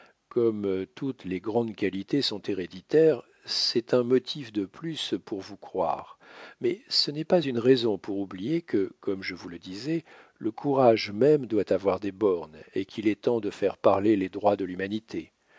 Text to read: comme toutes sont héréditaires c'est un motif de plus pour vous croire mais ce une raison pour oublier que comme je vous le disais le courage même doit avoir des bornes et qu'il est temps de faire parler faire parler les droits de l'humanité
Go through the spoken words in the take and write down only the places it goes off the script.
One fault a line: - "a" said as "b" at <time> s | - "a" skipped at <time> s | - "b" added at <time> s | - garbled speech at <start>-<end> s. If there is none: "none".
- "les grandes qualités" added at 1.2 s
- "n'est pas" added at 7.1 s
- "faire parler" skipped at 14.2 s